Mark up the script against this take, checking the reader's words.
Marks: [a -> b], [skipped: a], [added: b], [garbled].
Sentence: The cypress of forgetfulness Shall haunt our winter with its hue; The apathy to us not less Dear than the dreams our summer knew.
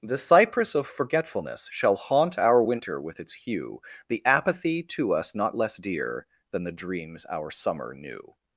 The cypress of forgetfulness Shall haunt our winter with its hue; The apathy to us not less Dear than the dreams our summer knew.